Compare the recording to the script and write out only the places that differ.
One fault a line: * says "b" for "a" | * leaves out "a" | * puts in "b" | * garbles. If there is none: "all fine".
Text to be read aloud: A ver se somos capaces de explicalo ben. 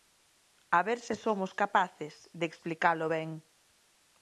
all fine